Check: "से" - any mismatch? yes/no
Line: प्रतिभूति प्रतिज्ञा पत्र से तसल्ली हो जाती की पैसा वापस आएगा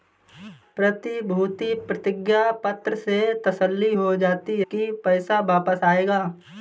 no